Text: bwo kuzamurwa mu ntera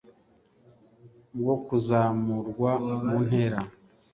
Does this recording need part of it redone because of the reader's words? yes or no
no